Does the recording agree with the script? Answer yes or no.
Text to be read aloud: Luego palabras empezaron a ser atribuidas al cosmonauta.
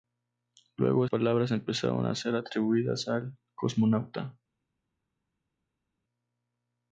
yes